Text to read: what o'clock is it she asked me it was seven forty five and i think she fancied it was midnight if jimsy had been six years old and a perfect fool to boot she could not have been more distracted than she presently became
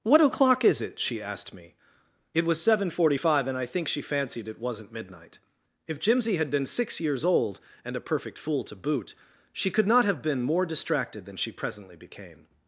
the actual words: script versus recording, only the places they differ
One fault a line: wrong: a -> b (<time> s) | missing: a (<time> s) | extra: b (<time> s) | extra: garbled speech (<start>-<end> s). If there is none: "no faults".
wrong: was -> wasn't (4.6 s)